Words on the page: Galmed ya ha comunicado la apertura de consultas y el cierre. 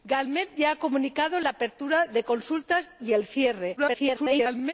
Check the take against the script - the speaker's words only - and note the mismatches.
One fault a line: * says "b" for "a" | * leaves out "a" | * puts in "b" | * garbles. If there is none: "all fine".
* garbles